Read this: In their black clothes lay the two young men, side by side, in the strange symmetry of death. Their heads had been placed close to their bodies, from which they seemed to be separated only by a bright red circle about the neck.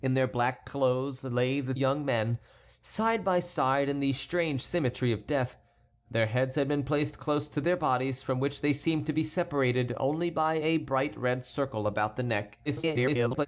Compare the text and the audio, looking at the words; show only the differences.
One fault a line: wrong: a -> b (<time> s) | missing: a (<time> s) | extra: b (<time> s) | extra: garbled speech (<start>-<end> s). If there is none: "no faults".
missing: two (1.8 s)
extra: garbled speech (12.7-13.5 s)